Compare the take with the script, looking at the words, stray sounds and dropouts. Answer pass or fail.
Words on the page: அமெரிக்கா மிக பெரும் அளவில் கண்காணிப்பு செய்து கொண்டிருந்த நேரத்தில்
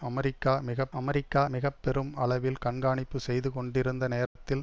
fail